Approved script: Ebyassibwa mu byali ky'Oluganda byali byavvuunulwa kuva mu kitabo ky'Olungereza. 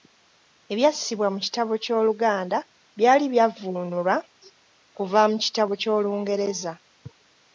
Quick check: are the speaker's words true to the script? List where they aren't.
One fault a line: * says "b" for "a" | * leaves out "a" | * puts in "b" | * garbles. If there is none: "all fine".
* says "kitabo" for "byali"